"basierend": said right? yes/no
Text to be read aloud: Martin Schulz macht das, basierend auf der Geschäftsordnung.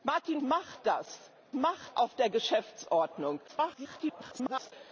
no